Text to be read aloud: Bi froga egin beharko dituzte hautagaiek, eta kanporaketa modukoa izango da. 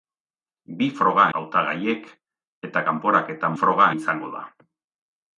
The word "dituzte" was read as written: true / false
false